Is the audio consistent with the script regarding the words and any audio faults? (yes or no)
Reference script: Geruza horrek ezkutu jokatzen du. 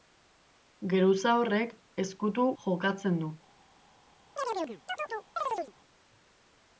no